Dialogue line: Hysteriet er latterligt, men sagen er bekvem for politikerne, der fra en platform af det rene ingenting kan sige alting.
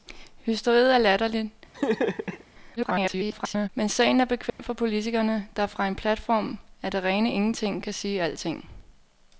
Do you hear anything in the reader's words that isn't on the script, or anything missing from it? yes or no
yes